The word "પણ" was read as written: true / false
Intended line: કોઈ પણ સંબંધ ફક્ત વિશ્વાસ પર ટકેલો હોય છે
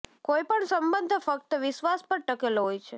true